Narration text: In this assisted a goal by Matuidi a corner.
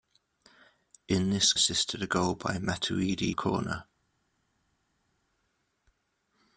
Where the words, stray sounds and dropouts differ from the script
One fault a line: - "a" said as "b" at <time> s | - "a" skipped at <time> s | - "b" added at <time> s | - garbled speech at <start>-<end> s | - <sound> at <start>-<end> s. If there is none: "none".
none